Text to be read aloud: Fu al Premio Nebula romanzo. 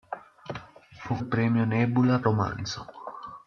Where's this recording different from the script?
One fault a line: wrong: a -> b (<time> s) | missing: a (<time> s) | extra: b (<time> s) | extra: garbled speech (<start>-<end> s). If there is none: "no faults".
no faults